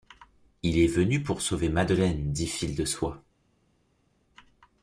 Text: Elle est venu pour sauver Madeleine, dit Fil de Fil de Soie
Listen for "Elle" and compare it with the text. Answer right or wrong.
wrong